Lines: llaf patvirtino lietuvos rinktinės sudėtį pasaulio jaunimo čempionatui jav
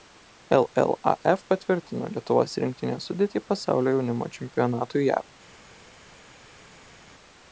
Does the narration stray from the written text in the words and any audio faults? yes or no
no